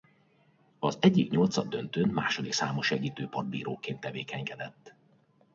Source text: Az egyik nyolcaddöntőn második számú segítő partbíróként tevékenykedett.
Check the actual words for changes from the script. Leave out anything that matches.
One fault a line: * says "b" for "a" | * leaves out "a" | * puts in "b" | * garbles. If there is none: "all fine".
all fine